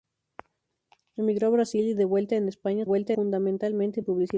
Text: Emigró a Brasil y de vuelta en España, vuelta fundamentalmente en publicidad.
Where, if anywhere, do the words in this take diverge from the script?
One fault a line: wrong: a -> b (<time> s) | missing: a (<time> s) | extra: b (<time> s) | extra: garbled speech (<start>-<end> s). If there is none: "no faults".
no faults